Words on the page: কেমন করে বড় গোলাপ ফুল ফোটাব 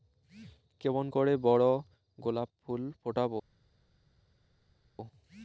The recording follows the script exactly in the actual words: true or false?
true